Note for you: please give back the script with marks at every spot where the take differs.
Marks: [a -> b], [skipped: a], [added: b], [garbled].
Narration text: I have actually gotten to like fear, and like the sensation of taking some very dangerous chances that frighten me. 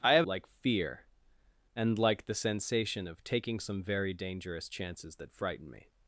I have [skipped: actually gotten to] like fear, and like the sensation of taking some very dangerous chances that frighten me.